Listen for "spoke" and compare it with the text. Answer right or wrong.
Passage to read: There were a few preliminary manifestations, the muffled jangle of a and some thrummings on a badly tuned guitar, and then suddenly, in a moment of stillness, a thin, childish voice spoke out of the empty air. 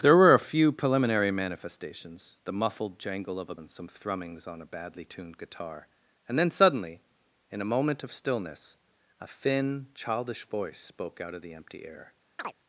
right